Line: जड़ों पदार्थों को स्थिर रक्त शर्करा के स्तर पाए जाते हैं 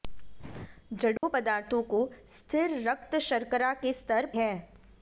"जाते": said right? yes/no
no